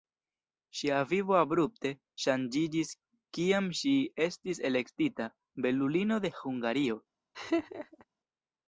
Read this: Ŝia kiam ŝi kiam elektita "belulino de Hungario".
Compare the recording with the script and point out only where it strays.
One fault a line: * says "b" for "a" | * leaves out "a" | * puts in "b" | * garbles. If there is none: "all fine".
* puts in "vivo abrupte ŝanĝiĝis"
* says "estis" for "kiam"